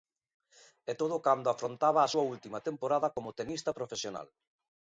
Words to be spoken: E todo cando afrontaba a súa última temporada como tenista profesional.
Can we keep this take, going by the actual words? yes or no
yes